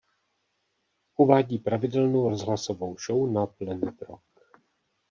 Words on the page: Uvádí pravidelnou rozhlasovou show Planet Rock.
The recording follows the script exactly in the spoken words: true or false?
false